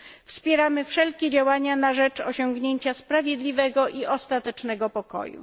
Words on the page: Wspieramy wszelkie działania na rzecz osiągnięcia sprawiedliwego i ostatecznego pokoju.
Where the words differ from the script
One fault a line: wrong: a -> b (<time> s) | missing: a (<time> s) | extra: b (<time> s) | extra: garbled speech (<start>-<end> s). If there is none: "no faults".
no faults